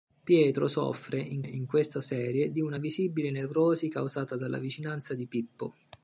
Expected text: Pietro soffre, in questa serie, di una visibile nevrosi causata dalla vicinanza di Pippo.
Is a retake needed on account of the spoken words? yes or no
yes